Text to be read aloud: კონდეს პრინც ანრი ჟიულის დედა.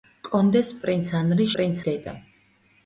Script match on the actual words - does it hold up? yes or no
no